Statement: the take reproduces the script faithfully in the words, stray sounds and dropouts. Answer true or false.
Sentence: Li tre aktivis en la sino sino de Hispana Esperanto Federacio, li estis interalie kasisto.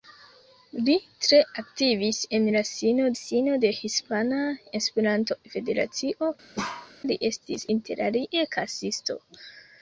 false